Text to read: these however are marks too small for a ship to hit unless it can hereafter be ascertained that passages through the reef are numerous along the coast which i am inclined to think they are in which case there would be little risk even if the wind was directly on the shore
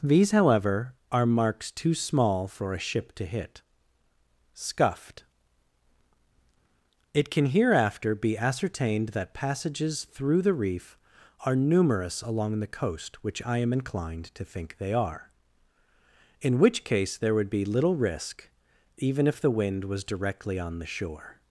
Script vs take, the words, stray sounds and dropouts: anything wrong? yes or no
yes